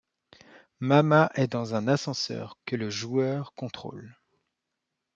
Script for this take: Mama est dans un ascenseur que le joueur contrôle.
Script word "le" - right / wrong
right